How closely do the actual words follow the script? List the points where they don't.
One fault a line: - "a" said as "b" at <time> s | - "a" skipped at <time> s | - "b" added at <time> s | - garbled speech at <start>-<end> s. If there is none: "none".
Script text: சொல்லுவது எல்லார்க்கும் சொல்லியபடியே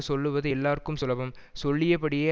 - "சுலபம்" added at 1.0 s